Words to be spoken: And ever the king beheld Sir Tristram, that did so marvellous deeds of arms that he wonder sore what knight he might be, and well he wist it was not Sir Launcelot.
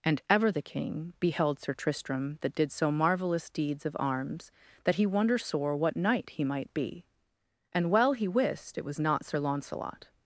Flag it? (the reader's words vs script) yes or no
no